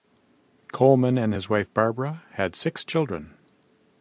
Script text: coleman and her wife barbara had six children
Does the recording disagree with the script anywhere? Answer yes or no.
yes